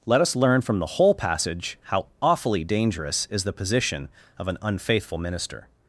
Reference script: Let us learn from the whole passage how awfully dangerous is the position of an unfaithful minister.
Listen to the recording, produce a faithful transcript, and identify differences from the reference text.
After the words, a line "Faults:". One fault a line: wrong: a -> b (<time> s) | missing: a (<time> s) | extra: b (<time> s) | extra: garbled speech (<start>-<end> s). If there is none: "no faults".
Let us learn from the whole passage how awfully dangerous is the position of an unfaithful minister.
Faults:
no faults